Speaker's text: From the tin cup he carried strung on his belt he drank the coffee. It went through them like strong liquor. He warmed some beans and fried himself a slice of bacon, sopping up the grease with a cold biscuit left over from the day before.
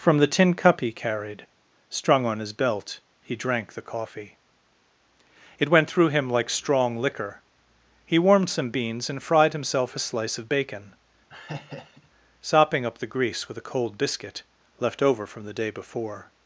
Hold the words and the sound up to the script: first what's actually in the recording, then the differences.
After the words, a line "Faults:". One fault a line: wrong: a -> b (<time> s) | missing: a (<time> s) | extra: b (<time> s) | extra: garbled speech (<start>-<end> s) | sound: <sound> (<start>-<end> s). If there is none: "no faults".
From the tin cup he carried strung on his belt he drank the coffee. It went through him like strong liquor. He warmed some beans and fried himself a slice of bacon, sopping up the grease with a cold biscuit left over from the day before.
Faults:
wrong: them -> him (6.1 s)
sound: laugh (11.3-12.1 s)